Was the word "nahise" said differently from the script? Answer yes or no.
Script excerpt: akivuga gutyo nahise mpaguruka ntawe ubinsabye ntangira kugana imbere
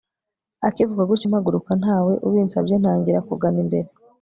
yes